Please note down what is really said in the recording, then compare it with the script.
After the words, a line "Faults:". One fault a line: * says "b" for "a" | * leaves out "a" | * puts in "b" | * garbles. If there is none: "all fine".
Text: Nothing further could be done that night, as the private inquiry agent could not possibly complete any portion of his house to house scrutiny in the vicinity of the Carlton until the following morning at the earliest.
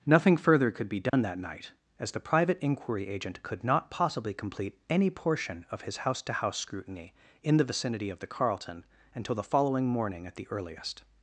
Nothing further could be done that night, as the private inquiry agent could not possibly complete any portion of his house to house scrutiny in the vicinity of the Carlton until the following morning at the earliest.
Faults:
all fine